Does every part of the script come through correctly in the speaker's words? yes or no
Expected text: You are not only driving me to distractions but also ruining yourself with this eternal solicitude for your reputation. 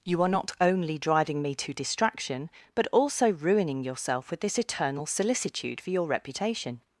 no